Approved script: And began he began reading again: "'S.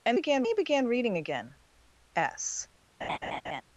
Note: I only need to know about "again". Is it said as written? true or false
true